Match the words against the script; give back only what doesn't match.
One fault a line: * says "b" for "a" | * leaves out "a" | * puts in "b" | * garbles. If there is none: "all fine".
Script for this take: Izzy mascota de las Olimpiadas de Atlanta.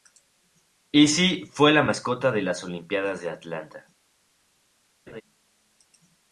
* puts in "fue la"